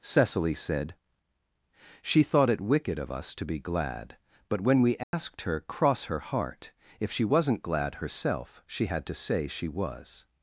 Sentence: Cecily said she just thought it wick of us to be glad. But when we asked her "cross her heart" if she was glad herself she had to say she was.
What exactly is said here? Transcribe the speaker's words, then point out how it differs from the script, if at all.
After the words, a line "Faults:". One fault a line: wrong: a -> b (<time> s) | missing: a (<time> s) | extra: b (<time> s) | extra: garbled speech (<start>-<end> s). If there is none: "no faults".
Cecily said she thought it wicked of us to be glad. But when we asked her "cross her heart" if she wasn't glad herself she had to say she was.
Faults:
missing: just (2.2 s)
wrong: wick -> wicked (2.6 s)
wrong: was -> wasn't (7.2 s)